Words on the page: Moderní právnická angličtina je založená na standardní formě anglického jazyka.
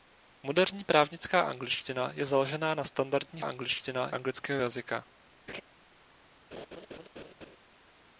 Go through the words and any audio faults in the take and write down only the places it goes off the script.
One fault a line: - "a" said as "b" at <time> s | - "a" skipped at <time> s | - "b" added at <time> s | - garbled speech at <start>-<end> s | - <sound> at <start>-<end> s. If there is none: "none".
- "formě" said as "angličtina" at 3.4 s
- laugh at 5.5-5.6 s
- laugh at 6.5-7.6 s